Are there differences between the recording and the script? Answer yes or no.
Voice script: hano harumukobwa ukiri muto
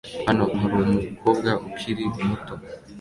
no